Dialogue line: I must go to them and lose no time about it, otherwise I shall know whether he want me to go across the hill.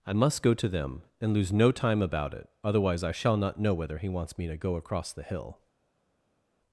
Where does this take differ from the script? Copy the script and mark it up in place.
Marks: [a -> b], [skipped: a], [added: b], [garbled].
I must go to them and lose no time about it, otherwise I shall [added: not] know whether he [want -> wants] me to go across the hill.